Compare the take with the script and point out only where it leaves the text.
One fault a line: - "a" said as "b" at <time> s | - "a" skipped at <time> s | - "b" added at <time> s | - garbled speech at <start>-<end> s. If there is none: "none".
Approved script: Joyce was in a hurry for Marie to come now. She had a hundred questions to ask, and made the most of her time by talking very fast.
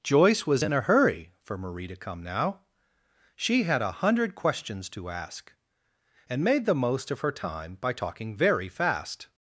none